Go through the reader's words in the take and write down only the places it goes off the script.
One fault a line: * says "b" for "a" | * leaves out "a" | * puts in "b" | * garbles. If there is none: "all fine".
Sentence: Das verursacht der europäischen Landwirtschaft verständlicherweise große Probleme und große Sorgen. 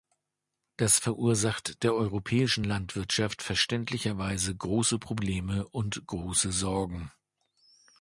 all fine